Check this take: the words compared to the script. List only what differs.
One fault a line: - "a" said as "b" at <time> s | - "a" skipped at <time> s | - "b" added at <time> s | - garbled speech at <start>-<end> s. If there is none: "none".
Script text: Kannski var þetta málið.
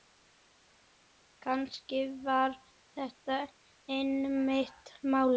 - "einmitt" added at 4.0 s